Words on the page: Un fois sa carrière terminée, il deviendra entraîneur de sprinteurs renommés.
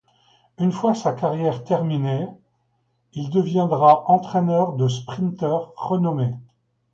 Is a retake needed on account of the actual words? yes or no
yes